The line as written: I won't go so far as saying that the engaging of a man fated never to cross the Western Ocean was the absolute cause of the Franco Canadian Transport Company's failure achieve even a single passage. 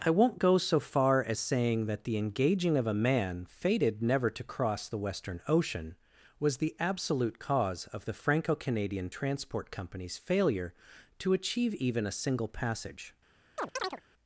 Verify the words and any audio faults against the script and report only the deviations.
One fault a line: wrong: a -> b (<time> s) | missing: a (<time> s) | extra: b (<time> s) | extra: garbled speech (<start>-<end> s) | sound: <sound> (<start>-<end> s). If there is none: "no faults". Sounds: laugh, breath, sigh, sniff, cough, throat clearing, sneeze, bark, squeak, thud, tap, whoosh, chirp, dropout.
extra: to (11.2 s)
sound: chirp (13.6-14.0 s)